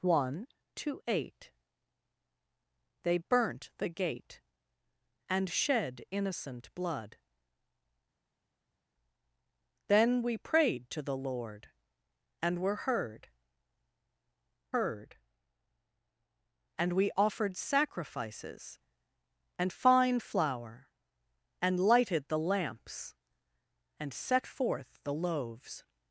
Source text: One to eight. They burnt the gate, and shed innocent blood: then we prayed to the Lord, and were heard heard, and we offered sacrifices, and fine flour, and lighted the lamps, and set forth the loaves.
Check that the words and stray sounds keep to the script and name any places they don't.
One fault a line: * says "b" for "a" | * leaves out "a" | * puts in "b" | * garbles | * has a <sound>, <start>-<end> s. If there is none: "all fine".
all fine